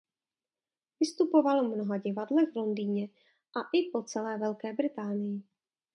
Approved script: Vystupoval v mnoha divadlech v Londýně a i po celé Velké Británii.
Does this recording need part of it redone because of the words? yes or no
no